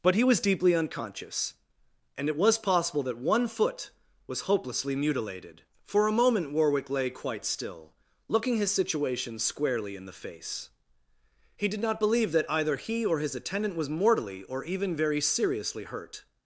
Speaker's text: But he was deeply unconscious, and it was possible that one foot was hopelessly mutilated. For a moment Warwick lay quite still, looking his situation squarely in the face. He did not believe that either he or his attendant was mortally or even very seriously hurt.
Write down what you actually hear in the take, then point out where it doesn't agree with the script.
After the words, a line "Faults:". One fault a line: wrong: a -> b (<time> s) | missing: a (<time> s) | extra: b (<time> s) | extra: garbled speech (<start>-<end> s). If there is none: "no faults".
But he was deeply unconscious, and it was possible that one foot was hopelessly mutilated. For a moment Warwick lay quite still, looking his situation squarely in the face. He did not believe that either he or his attendant was mortally or even very seriously hurt.
Faults:
no faults